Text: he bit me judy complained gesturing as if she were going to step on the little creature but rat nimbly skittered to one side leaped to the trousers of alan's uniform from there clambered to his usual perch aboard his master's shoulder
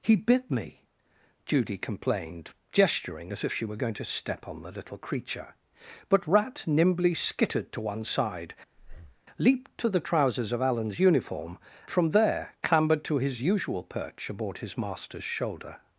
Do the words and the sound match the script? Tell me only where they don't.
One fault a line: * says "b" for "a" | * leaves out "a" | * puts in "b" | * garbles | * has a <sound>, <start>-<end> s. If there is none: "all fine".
* has a breath, 8.7-9.2 s